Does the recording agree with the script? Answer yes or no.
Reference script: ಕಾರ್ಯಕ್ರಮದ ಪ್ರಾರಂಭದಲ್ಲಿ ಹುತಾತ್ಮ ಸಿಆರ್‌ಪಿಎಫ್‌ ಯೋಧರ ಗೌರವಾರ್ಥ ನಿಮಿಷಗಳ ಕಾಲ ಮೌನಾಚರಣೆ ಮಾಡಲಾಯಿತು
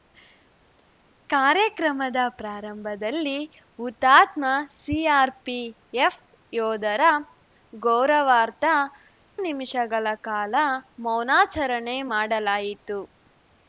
yes